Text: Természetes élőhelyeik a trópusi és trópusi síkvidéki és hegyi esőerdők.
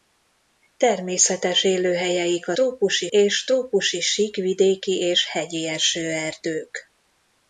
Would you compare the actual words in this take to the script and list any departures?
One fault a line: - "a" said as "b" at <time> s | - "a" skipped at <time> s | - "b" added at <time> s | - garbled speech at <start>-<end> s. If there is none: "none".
none